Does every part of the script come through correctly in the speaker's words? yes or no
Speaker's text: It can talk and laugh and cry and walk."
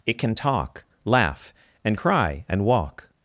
no